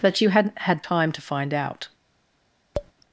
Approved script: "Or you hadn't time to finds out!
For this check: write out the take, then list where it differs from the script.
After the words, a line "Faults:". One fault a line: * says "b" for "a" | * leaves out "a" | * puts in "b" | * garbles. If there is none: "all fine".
"But you hadn't had time to find out!
Faults:
* says "But" for "Or"
* puts in "had"
* says "find" for "finds"